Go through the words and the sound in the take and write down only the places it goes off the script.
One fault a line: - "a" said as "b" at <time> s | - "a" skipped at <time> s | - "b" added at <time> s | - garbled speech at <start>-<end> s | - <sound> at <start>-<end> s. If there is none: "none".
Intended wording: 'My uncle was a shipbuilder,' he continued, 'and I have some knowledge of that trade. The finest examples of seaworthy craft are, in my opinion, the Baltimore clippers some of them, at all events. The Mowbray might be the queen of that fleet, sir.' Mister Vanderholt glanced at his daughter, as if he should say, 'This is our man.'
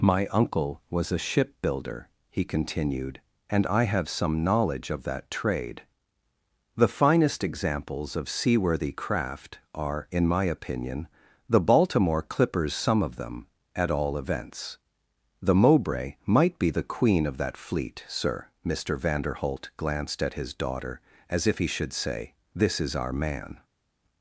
none